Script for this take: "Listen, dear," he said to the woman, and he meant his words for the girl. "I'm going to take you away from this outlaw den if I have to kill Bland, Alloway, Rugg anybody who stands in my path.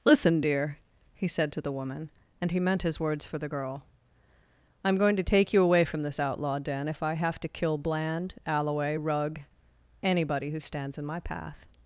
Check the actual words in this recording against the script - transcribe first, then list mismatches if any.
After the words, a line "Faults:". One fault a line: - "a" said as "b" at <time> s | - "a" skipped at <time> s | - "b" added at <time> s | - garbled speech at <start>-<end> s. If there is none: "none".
"Listen, dear," he said to the woman, and he meant his words for the girl. "I'm going to take you away from this outlaw den if I have to kill Bland, Alloway, Rugg anybody who stands in my path.
Faults:
none